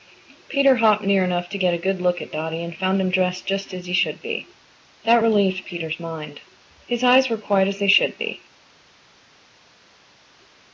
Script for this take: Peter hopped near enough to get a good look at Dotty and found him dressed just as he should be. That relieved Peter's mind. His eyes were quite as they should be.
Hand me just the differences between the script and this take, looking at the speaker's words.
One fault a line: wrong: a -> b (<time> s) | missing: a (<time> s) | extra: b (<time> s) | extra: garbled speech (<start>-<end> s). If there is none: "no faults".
no faults